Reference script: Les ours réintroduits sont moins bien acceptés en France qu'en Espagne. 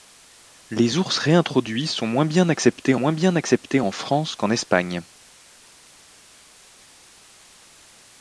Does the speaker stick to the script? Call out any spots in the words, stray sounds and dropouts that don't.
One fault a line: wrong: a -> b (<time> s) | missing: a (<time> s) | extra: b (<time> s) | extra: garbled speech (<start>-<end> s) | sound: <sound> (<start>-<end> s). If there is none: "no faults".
extra: moins bien acceptés (2.9 s)